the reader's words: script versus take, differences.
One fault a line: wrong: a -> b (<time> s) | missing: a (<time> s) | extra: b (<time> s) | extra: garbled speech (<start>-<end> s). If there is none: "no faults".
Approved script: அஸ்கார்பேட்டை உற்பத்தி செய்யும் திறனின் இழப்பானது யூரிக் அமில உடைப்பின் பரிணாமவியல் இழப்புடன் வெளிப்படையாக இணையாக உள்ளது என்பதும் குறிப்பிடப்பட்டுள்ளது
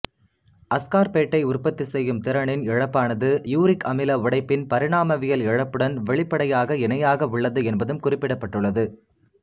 no faults